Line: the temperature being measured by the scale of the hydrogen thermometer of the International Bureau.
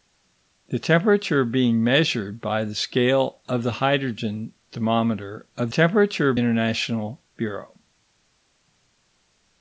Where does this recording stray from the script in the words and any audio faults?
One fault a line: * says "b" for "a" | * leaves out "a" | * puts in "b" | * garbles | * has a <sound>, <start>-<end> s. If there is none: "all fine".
* says "temperature" for "the"